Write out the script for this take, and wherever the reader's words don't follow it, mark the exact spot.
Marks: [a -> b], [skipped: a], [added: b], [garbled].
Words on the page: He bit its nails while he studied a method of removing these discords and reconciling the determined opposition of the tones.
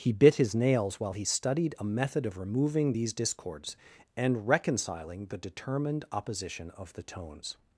He bit [its -> his] nails while he studied a method of removing these discords and reconciling the determined opposition of the tones.